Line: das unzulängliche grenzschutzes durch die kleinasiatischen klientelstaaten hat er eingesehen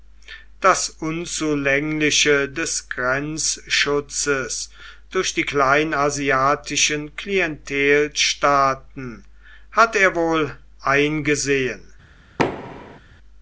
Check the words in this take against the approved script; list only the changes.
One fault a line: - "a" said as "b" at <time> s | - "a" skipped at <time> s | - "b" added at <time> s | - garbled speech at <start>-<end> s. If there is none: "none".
- "des" added at 2.5 s
- "wohl" added at 10.1 s